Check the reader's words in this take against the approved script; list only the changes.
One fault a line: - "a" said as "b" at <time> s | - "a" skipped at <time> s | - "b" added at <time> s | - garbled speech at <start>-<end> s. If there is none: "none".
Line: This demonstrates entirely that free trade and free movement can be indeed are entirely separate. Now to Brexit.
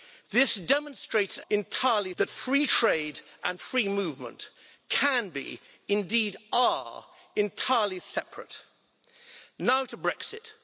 none